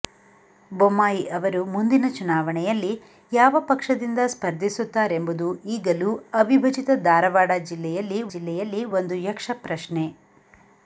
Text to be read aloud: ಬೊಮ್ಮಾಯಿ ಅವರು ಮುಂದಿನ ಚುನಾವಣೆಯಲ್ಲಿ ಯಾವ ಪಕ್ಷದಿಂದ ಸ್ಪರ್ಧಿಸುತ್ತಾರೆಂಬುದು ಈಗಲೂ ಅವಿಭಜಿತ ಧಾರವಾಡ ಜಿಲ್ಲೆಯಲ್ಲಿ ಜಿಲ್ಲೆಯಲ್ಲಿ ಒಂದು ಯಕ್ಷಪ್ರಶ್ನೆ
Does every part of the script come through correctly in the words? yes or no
yes